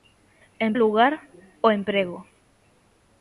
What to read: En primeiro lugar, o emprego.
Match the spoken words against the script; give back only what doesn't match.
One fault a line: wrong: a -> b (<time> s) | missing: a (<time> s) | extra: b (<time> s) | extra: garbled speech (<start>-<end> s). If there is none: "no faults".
missing: primeiro (0.7 s)